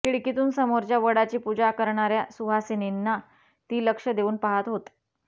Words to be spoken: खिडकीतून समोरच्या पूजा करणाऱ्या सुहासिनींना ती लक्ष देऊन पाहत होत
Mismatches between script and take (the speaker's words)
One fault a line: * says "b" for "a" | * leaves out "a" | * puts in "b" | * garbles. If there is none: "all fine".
* puts in "वडाची"